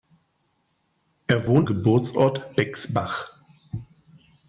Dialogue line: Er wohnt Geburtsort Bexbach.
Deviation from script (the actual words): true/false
false